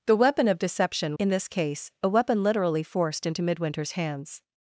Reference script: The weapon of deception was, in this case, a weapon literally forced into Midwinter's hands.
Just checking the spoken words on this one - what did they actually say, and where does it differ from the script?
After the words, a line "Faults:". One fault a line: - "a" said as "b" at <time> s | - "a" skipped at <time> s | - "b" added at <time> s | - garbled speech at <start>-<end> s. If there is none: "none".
The weapon of deception in this case, a weapon literally forced into Midwinter's hands.
Faults:
- "was" skipped at 1.2 s